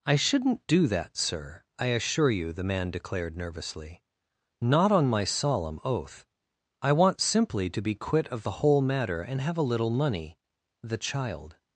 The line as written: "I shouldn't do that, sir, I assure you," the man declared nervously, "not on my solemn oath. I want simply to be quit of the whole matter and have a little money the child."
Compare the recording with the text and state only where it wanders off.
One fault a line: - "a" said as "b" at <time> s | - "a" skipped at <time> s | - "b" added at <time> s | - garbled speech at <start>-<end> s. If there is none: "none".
none